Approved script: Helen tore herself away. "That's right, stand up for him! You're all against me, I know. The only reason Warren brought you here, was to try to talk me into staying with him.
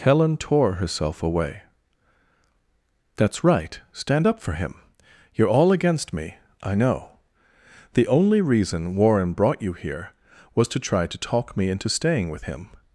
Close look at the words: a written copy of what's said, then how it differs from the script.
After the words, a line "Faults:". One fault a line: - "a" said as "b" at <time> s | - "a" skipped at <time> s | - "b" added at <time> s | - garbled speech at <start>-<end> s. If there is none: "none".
Helen tore herself away. "That's right, stand up for him! You're all against me, I know. The only reason Warren brought you here, was to try to talk me into staying with him.
Faults:
none